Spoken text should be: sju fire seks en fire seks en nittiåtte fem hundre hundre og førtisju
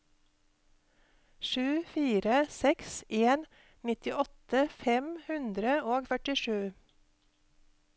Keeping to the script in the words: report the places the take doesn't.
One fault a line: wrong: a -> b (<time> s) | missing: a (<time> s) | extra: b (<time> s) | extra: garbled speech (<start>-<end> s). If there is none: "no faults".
missing: fire seks en (3.5 s)
missing: hundre (5.8 s)